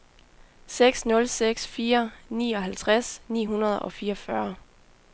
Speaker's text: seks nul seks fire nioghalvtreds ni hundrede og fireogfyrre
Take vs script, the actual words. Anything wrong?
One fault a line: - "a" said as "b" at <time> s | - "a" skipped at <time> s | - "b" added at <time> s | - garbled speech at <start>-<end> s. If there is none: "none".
none